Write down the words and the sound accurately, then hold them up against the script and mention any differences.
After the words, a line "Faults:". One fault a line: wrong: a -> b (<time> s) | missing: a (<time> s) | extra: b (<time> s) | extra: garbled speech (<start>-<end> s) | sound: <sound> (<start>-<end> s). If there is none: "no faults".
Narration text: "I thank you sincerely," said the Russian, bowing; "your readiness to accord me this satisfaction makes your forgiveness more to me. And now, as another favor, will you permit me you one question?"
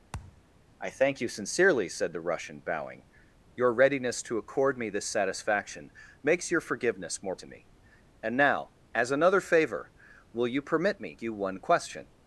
"I thank you sincerely," said the Russian, bowing; "your readiness to accord me this satisfaction makes your forgiveness more to me. And now, as another favor, will you permit me you one question?"
Faults:
sound: thud (0.1-0.4 s)